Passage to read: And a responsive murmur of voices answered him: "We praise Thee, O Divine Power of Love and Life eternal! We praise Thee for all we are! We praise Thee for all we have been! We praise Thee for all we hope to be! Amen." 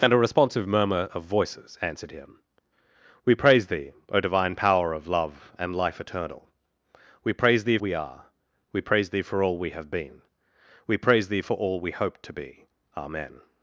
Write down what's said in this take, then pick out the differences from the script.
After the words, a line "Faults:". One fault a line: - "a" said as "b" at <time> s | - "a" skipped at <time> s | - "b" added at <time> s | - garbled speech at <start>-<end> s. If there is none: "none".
And a responsive murmur of voices answered him: "We praise Thee, O Divine Power of Love and Life eternal! We praise Thee we are! We praise Thee for all we have been! We praise Thee for all we hope to be! Amen."
Faults:
- "for all" skipped at 7.8 s